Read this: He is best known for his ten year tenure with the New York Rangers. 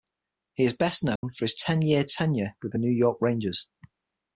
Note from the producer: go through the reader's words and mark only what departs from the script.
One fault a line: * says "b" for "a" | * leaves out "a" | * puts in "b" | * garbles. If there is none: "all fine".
all fine